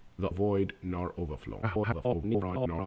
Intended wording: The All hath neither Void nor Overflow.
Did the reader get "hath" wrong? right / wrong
wrong